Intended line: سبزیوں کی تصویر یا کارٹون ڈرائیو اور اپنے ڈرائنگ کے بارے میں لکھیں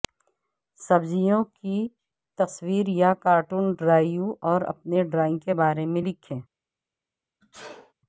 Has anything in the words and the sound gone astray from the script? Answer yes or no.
yes